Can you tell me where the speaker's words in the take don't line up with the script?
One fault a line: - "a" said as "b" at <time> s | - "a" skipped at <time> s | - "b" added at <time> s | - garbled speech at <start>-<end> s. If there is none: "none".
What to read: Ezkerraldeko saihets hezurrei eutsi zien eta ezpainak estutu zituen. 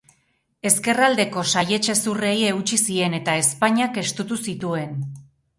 none